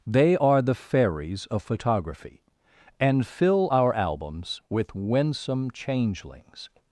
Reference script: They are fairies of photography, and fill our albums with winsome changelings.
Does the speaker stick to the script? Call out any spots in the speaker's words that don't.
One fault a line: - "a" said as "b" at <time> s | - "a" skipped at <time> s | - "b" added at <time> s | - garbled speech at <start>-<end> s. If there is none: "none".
- "the" added at 0.6 s